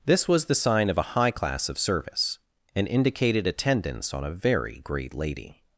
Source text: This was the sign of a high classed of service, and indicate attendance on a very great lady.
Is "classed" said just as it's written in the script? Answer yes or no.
no